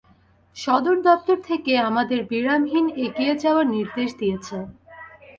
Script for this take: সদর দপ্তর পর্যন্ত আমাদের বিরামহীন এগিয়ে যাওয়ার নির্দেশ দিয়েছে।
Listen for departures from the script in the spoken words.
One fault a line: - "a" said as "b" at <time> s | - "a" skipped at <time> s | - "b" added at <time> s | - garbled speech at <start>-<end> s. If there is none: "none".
- "পর্যন্ত" said as "থেকে" at 1.5 s